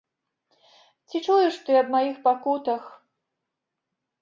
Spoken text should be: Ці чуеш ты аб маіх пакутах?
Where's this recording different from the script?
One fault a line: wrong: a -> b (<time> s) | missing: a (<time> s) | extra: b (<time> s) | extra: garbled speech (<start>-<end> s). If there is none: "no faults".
no faults